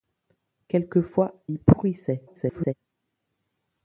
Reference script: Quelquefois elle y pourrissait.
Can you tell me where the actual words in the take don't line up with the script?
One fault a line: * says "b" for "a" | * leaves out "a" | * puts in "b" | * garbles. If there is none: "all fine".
* leaves out "elle"
* garbles